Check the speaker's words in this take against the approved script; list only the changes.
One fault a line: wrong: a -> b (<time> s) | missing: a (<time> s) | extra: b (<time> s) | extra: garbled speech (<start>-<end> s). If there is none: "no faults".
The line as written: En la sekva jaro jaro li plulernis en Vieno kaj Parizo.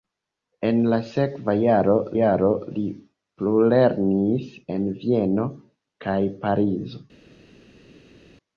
no faults